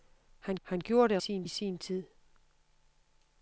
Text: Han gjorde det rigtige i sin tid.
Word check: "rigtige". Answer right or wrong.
wrong